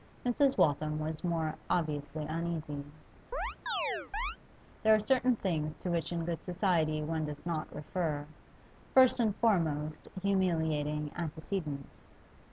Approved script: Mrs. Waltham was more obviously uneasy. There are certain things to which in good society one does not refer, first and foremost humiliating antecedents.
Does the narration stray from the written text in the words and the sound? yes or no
yes